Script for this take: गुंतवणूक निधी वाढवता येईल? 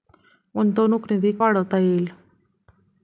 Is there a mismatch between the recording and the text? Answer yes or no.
no